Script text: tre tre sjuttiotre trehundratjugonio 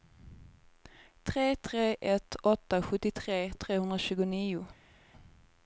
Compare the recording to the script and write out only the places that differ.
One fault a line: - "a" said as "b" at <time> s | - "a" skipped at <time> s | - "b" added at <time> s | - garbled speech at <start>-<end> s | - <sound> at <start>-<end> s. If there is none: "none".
- "ett åtta" added at 2.0 s